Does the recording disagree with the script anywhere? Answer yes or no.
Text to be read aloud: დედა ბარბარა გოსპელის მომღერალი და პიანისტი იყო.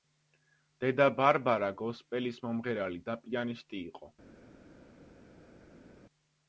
no